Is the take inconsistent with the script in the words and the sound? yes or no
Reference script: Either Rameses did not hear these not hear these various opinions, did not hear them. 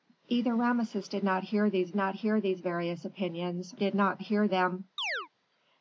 yes